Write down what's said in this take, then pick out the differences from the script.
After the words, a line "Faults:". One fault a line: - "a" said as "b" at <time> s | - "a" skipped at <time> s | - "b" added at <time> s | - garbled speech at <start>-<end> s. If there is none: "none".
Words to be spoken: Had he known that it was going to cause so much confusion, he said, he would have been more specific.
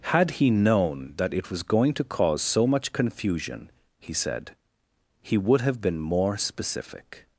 Had he known that it was going to cause so much confusion, he said, he would have been more specific.
Faults:
none